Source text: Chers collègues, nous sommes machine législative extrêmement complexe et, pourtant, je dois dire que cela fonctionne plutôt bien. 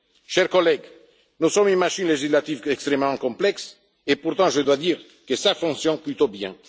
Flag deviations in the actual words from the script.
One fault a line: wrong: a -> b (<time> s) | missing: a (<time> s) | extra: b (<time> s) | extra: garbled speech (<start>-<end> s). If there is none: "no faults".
extra: une (1.7 s)